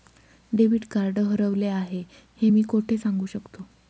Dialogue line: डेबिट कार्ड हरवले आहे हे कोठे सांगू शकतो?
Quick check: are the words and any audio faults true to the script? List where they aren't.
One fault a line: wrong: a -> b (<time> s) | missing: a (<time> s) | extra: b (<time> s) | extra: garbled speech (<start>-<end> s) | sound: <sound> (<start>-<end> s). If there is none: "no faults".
extra: मी (2.5 s)